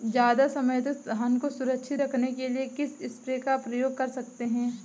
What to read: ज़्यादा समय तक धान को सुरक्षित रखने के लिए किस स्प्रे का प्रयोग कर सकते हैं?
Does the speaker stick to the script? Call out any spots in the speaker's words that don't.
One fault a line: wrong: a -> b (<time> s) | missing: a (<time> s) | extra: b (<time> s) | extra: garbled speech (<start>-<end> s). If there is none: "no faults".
no faults